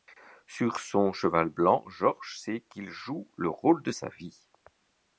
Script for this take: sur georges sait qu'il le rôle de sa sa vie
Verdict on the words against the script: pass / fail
fail